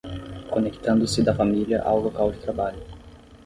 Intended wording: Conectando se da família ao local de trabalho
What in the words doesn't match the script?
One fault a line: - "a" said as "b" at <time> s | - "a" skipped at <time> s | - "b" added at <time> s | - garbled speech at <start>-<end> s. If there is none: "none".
none